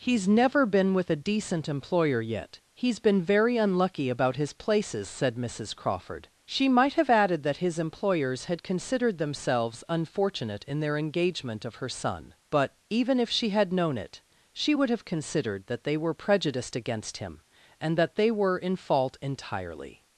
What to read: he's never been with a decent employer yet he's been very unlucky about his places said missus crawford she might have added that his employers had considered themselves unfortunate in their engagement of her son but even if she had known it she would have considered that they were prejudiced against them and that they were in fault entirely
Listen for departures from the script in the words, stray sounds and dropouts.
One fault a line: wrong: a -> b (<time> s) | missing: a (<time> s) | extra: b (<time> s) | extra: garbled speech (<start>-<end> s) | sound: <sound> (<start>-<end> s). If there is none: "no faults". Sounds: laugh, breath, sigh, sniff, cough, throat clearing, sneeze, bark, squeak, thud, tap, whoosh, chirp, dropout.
wrong: them -> him (17.2 s)